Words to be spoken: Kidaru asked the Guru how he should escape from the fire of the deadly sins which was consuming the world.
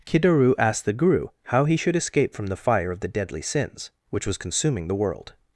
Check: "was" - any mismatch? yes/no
no